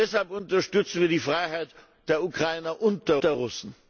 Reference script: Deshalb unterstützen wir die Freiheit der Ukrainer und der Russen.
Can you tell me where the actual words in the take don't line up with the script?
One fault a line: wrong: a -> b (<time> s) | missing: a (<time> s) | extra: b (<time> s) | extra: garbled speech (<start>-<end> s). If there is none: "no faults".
extra: der (3.2 s)